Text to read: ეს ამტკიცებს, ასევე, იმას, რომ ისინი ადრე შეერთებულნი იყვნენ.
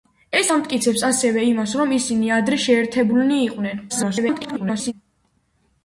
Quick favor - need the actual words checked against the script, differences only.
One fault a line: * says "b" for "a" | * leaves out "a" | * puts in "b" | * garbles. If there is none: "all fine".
* garbles